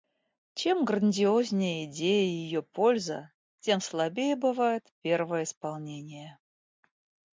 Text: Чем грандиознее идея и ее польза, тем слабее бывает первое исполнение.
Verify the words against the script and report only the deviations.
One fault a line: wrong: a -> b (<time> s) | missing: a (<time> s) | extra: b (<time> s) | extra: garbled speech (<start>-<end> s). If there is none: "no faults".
no faults